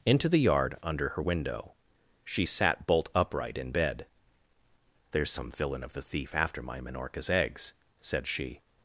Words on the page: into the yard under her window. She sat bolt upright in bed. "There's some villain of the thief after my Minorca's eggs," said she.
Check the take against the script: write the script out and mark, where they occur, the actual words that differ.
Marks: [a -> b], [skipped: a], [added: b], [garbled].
into the yard under her window. She sat bolt upright in bed. "There's some villain of the thief after my Minorca's eggs," said she.